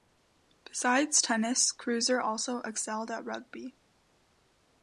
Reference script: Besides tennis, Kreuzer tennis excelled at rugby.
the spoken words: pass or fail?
fail